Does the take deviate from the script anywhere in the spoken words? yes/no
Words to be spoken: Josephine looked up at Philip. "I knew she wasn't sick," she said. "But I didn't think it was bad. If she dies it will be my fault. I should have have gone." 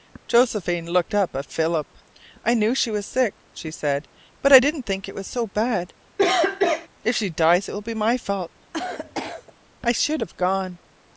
yes